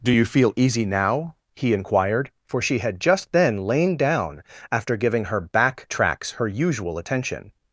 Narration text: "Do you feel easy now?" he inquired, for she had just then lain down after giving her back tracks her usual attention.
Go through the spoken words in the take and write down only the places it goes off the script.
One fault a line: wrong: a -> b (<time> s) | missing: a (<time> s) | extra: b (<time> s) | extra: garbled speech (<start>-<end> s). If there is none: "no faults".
no faults